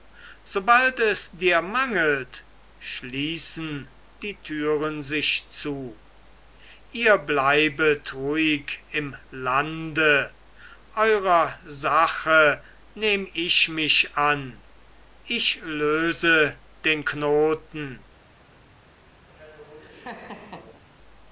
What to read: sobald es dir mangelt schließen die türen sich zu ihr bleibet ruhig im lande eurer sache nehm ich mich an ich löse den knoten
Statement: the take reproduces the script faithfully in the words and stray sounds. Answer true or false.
false